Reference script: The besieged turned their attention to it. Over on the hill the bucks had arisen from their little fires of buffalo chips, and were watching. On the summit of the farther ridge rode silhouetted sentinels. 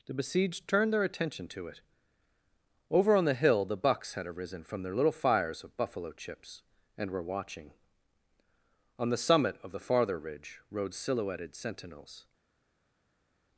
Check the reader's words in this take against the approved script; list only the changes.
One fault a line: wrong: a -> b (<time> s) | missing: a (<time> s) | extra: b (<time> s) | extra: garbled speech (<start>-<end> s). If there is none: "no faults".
no faults